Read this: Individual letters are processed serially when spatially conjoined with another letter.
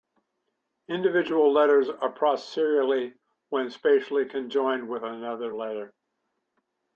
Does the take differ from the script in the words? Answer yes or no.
no